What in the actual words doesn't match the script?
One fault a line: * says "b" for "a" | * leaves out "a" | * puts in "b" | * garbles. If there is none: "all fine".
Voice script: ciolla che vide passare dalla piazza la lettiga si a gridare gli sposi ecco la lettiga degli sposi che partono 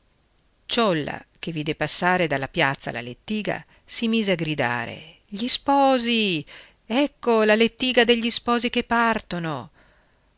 * puts in "mise"